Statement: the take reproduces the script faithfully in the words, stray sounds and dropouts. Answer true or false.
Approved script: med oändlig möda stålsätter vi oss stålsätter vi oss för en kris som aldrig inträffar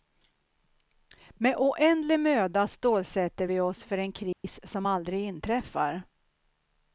false